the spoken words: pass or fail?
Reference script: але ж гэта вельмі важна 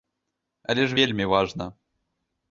fail